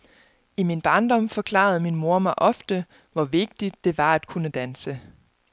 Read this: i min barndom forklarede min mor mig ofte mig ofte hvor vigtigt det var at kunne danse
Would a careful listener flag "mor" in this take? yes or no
no